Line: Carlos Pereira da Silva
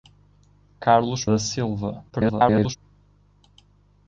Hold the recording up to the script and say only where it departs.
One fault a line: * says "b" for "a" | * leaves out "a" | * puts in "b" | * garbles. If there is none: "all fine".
* leaves out "Pereira"
* garbles